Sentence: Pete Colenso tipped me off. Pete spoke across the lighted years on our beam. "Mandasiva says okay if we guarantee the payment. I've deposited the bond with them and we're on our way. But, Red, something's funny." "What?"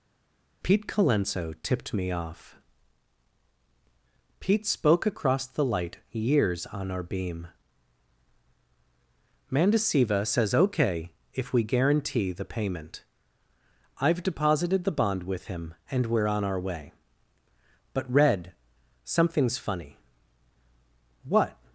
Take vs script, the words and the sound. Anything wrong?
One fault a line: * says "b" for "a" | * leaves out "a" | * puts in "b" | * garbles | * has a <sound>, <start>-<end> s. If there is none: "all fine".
* says "light" for "lighted"
* says "him" for "them"